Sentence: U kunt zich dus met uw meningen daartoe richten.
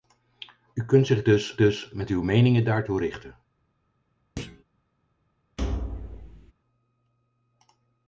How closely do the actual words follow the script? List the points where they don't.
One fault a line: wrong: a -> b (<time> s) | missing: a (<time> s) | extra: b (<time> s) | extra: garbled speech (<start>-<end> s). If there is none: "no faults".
extra: dus (1.6 s)